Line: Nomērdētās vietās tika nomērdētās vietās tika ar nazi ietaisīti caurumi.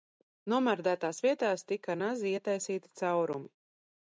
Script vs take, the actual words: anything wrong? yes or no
yes